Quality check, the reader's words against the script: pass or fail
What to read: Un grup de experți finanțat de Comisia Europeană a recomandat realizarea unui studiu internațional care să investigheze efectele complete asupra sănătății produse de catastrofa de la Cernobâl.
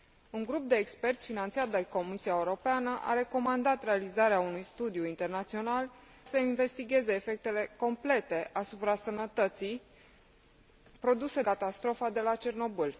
fail